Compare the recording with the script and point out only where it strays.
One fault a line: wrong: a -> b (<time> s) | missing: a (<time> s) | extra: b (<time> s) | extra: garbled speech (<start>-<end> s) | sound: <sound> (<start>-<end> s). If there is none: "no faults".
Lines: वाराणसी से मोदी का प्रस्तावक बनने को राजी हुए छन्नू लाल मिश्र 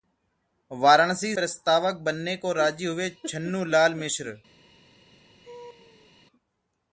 missing: से मोदी का (1.4 s)
sound: laugh (5.4-6.1 s)